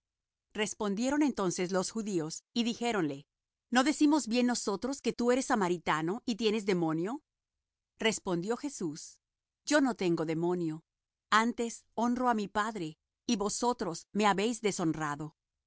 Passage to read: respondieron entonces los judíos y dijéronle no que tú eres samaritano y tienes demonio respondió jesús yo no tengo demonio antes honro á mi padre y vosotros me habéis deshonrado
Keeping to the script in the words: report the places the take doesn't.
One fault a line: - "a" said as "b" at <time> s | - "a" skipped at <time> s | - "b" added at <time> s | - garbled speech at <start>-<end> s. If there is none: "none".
- "decimos bien nosotros" added at 3.8 s